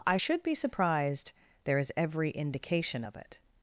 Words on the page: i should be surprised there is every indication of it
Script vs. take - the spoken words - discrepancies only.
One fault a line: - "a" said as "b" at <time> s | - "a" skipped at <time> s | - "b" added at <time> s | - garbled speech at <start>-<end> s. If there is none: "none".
none